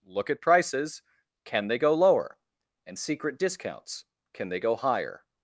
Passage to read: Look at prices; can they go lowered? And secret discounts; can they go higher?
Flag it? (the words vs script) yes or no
yes